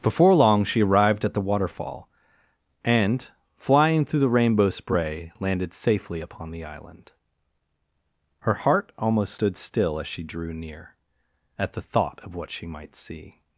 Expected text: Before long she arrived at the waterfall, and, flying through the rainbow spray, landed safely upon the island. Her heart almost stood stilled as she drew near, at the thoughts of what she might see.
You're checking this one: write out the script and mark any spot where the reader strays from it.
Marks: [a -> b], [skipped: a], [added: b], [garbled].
Before long she arrived at the waterfall, and, flying through the rainbow spray, landed safely upon the island. Her heart almost stood [stilled -> still] as she drew near, at the [thoughts -> thought] of what she might see.